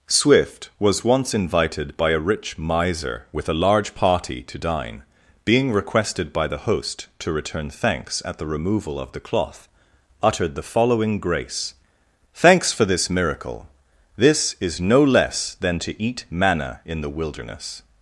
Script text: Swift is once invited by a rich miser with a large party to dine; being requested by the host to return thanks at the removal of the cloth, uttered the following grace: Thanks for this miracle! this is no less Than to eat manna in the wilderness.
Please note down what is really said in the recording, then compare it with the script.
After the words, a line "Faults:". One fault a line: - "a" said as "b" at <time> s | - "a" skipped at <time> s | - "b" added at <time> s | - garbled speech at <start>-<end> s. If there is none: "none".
Swift was once invited by a rich miser with a large party to dine; being requested by the host to return thanks at the removal of the cloth, uttered the following grace: Thanks for this miracle! this is no less Than to eat manna in the wilderness.
Faults:
- "is" said as "was" at 0.8 s